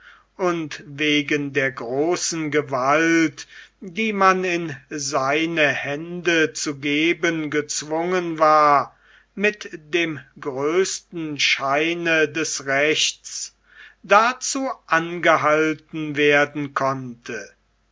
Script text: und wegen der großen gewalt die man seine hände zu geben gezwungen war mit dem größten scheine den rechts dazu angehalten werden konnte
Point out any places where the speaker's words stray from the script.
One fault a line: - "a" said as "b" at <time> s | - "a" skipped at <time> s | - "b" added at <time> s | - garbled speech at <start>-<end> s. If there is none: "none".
- "in" added at 4.4 s
- "den" said as "des" at 12.3 s